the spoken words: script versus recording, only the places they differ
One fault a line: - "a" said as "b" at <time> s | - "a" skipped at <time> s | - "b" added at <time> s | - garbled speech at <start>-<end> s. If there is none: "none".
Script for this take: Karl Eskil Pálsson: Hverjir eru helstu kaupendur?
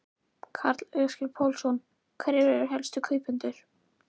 none